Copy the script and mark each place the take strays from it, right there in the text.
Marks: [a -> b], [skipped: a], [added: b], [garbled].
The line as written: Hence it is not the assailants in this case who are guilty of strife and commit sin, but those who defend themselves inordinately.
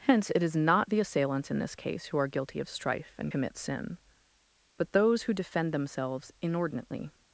Hence it is not the assailants in this case who are guilty of strife and commit sin, but those who defend themselves inordinately.